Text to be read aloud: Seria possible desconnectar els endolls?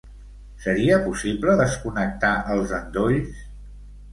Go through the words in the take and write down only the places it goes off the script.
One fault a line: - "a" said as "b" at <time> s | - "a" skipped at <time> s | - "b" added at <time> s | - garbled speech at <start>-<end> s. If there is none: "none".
none